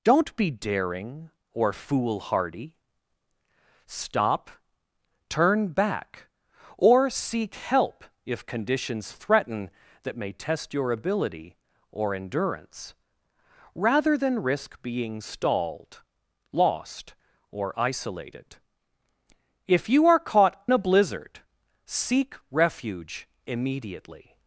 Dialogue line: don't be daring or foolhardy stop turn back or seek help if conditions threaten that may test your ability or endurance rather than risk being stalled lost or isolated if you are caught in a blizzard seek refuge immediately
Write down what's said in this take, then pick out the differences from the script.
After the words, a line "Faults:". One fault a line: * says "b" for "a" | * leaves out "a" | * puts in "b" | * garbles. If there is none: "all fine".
don't be daring or foolhardy stop turn back or seek help if conditions threaten that may test your ability or endurance rather than risk being stalled lost or isolated if you are caught a blizzard seek refuge immediately
Faults:
* leaves out "in"